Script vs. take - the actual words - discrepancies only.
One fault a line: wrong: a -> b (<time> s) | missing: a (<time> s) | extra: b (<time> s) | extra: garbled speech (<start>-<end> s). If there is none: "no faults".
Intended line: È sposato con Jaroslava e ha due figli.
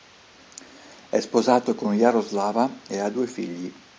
no faults